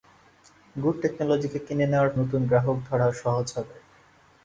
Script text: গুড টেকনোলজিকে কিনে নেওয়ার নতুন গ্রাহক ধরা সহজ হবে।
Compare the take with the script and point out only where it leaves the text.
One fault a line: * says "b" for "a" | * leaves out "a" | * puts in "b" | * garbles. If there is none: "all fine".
all fine